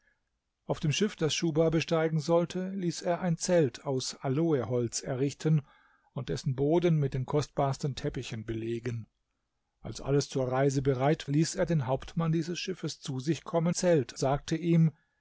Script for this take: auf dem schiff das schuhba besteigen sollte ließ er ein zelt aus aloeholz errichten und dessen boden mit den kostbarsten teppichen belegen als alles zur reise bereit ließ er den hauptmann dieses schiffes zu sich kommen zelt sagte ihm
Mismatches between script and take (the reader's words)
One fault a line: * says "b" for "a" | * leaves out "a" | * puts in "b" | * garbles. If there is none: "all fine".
all fine